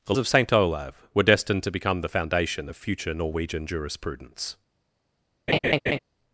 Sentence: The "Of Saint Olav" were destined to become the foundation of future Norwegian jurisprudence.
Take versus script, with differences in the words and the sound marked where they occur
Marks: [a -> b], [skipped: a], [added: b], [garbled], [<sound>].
The "Of Saint Olav" were destined to become the foundation of future Norwegian jurisprudence. [laugh]